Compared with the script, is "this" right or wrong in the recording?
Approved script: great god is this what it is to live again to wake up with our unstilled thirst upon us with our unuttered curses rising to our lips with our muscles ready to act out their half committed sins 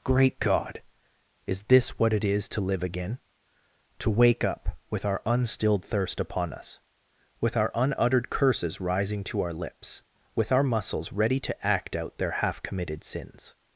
right